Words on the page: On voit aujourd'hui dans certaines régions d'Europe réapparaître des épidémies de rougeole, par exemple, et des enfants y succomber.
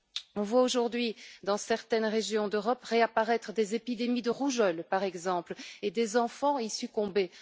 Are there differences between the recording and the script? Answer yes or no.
no